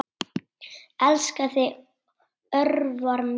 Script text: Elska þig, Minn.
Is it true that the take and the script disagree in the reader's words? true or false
true